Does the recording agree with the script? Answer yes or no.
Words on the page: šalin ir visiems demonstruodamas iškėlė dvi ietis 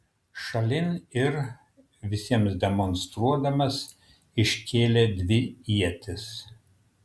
yes